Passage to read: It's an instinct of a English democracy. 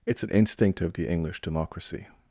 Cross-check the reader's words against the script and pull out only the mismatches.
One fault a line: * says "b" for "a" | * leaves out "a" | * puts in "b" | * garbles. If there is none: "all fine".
* says "the" for "a"